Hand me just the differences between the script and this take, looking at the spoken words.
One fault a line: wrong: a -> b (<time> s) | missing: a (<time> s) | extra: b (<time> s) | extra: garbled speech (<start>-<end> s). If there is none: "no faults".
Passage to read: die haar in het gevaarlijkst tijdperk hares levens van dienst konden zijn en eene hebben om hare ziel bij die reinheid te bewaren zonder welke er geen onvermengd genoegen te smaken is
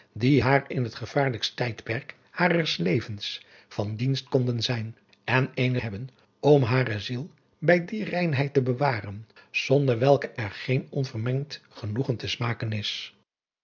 no faults